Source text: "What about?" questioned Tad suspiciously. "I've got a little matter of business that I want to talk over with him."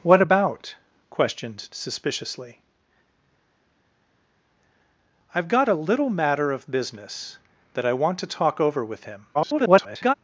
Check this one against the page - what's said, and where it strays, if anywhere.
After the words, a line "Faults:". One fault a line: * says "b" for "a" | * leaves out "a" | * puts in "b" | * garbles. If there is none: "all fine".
"What about?" questioned Suspiciously. "I've got a little matter of business that I want to talk over with him." [garbled]
Faults:
* leaves out "Tad"
* garbles